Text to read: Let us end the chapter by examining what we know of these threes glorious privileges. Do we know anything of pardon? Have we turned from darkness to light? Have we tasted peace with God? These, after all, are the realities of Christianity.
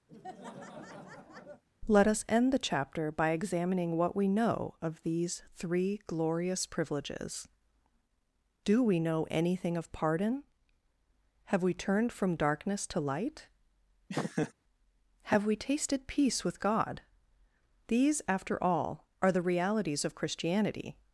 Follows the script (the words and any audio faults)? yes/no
no